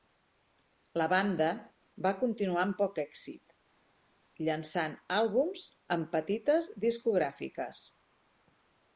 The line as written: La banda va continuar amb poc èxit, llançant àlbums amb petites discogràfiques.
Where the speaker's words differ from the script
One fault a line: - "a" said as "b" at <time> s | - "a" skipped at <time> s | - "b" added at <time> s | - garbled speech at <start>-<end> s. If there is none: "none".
none